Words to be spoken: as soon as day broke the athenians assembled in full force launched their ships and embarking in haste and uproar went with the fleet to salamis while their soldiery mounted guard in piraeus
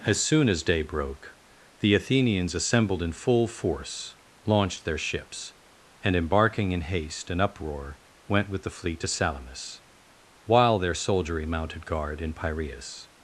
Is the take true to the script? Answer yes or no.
yes